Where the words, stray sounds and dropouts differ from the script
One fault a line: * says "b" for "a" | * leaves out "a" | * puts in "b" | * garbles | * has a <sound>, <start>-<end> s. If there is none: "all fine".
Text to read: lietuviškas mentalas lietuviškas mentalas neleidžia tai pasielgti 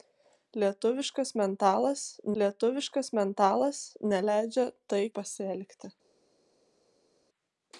all fine